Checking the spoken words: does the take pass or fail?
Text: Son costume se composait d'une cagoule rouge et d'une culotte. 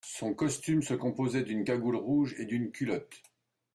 pass